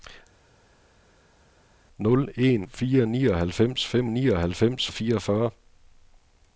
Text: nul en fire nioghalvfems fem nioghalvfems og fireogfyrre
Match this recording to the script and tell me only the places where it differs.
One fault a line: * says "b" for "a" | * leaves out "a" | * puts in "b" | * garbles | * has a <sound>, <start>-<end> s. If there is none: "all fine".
all fine